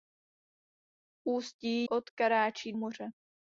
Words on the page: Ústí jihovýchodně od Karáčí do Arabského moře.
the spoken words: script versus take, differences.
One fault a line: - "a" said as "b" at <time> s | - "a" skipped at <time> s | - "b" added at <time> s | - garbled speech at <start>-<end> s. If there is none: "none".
- "jihovýchodně" skipped at 1.9 s
- "do Arabského" skipped at 2.7 s